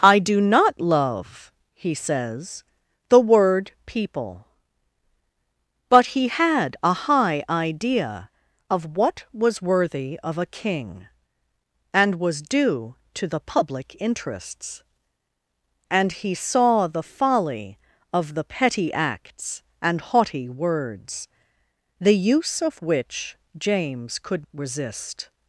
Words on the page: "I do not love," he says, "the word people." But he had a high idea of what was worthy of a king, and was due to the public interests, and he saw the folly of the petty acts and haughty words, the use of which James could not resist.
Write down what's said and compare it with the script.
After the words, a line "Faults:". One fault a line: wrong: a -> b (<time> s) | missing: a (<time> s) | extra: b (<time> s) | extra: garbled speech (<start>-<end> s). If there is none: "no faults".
"I do not love," he says, "the word people." But he had a high idea of what was worthy of a king, and was due to the public interests, and he saw the folly of the petty acts and haughty words, the use of which James could resist.
Faults:
missing: not (24.5 s)